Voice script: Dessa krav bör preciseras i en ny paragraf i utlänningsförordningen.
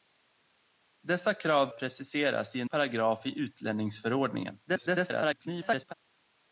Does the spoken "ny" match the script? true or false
false